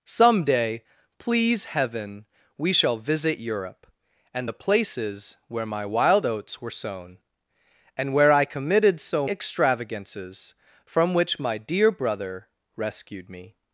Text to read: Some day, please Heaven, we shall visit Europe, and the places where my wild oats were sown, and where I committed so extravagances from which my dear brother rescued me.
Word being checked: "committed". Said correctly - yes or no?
yes